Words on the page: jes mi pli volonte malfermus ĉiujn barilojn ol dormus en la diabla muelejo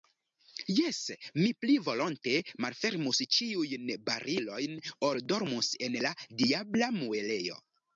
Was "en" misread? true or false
false